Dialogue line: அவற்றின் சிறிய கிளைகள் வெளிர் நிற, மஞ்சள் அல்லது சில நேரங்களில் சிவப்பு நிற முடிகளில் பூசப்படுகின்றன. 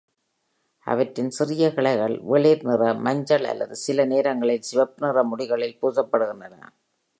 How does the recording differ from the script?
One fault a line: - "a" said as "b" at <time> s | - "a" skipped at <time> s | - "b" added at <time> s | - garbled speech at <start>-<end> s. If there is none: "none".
none